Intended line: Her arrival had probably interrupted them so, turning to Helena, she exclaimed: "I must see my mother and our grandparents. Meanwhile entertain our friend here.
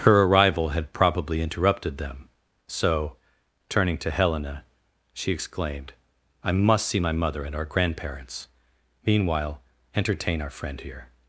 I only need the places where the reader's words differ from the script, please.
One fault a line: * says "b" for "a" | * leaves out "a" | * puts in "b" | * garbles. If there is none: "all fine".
all fine